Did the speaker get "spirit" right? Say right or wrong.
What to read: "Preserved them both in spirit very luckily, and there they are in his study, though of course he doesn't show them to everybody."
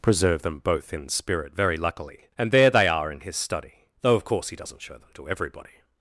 right